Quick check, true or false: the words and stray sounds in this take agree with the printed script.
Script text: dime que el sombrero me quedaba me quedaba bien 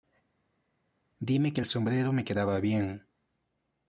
false